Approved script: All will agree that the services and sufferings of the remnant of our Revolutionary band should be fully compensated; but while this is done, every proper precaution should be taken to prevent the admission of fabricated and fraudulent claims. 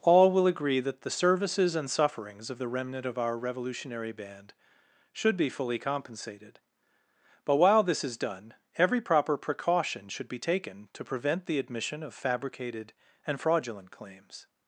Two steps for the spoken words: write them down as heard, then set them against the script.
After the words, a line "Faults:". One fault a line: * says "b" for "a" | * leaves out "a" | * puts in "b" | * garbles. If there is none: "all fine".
All will agree that the services and sufferings of the remnant of our Revolutionary band should be fully compensated; but while this is done, every proper precaution should be taken to prevent the admission of fabricated and fraudulent claims.
Faults:
all fine